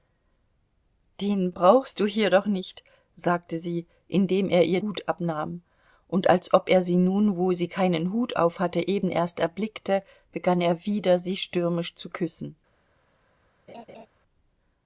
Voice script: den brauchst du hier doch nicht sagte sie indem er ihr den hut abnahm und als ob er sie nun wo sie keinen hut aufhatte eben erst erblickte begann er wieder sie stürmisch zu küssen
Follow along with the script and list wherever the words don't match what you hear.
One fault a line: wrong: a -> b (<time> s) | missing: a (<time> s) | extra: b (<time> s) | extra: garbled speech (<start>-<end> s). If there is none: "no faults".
missing: den (4.8 s)